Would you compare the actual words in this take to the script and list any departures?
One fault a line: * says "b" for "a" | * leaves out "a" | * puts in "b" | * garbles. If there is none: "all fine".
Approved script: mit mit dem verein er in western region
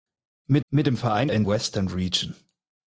all fine